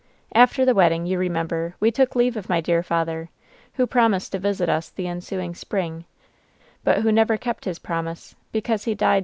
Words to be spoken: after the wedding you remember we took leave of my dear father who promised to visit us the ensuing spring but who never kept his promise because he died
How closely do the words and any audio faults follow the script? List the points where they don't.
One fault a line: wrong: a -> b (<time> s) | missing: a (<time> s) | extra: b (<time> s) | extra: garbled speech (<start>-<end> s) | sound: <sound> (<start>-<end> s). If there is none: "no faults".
no faults